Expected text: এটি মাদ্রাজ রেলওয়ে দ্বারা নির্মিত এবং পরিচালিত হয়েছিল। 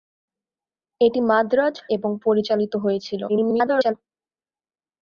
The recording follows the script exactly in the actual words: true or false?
false